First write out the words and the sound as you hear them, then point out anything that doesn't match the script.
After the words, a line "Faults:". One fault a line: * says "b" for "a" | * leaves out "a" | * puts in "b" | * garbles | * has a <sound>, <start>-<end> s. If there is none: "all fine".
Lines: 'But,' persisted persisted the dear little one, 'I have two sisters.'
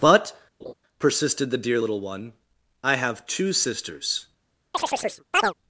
'But,' persisted the dear little one, 'I have two sisters.'
Faults:
* has a laugh, 0.6-0.7 s
* leaves out "persisted"
* has a chirp, 4.7-5.5 s